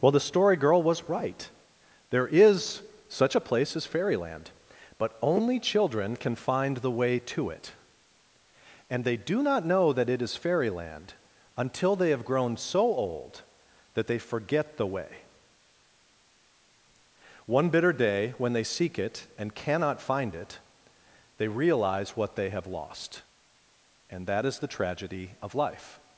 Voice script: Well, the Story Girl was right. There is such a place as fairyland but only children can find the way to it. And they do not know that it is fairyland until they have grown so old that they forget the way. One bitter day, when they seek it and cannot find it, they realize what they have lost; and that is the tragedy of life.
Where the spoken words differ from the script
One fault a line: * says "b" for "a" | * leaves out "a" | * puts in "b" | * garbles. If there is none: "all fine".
all fine